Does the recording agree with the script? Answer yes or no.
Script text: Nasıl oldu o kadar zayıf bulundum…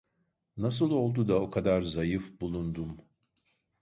no